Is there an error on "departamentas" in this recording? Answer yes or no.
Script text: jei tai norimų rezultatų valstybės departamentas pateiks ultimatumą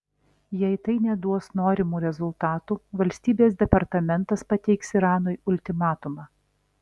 no